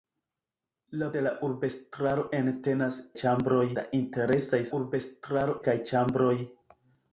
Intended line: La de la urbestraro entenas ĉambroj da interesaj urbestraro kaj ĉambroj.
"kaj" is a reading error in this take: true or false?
false